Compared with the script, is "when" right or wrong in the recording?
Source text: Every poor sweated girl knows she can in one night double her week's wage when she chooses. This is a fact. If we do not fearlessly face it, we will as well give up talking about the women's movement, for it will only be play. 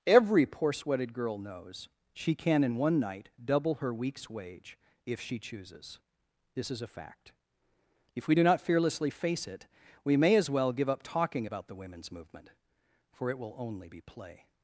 wrong